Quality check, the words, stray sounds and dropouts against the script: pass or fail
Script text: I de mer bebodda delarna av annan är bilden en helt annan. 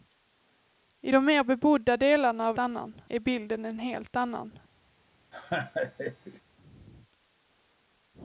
fail